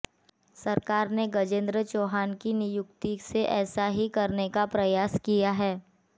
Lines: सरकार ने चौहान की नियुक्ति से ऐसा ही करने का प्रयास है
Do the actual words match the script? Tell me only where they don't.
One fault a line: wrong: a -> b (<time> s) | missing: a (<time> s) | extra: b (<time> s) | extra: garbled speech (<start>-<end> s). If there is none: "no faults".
extra: गजेंद्र (1.4 s)
extra: किया (5.2 s)